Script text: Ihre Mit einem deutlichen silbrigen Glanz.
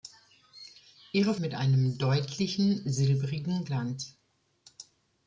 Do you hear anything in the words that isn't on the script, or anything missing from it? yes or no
no